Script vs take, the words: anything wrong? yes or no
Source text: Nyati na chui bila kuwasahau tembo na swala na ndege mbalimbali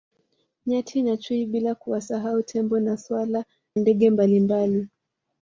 yes